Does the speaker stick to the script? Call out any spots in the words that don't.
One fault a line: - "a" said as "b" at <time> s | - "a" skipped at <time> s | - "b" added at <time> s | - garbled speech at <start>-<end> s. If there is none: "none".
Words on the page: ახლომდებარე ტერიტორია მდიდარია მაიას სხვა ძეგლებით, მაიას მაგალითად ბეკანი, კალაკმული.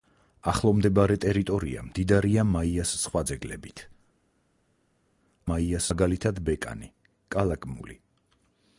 none